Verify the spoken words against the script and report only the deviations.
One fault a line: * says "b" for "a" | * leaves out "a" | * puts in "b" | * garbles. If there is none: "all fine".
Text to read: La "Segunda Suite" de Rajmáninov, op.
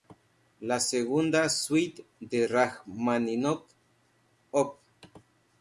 all fine